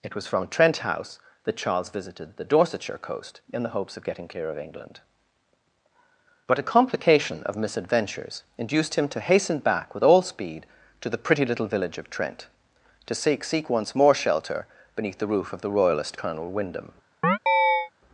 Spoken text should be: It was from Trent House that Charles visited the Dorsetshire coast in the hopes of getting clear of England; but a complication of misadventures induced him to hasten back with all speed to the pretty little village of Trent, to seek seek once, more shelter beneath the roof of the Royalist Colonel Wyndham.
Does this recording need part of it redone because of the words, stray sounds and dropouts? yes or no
yes